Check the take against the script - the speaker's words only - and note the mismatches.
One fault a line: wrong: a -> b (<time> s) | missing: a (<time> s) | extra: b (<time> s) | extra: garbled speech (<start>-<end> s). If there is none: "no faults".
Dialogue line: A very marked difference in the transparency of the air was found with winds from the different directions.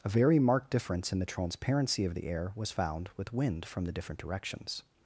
wrong: winds -> wind (3.3 s)